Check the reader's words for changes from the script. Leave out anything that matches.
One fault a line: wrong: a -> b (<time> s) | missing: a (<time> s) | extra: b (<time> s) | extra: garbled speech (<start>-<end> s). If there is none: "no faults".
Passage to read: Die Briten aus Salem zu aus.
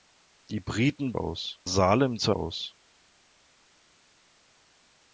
no faults